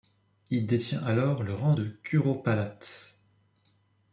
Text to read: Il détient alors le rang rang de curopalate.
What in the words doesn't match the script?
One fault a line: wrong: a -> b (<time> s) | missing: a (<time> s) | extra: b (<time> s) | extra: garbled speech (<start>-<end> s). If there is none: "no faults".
missing: rang (1.8 s)